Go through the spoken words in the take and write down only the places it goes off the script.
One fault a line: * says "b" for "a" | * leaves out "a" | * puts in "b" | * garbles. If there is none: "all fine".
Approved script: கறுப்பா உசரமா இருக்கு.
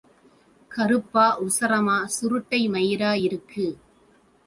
* puts in "சுருட்டை மயிரா"